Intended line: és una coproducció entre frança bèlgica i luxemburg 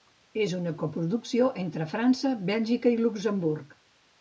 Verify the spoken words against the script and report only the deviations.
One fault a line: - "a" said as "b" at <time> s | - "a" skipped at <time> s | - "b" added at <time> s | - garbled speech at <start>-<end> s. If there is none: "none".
none